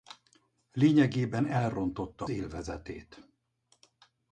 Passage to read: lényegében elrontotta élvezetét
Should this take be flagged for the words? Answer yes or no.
no